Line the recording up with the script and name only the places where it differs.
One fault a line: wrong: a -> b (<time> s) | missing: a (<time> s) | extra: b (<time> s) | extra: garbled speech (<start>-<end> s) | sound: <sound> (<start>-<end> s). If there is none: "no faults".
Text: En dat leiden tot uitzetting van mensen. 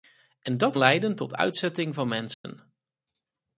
sound: dropout (2.3-2.4 s)